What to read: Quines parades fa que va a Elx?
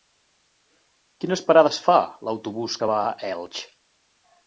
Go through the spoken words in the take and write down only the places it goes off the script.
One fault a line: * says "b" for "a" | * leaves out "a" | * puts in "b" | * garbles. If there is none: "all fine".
* puts in "l'autobús"